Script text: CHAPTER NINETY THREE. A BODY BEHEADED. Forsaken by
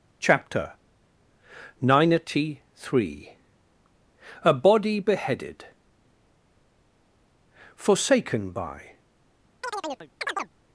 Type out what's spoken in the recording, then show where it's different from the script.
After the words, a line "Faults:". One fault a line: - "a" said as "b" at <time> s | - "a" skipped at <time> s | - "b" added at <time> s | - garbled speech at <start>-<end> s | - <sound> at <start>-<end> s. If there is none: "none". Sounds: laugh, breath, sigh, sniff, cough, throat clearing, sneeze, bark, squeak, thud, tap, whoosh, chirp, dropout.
CHAPTER NINETY THREE. A BODY BEHEADED. Forsaken by
Faults:
- chirp at 9.6-10.5 s